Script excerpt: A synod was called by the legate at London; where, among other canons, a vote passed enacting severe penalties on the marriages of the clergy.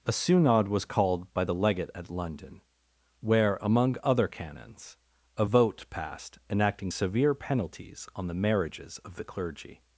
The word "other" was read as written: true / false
true